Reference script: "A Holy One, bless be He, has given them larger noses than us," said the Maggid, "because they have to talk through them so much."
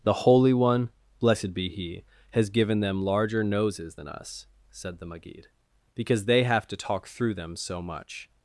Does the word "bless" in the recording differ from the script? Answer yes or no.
yes